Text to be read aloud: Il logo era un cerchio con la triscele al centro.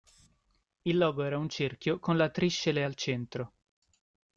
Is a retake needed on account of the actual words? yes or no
no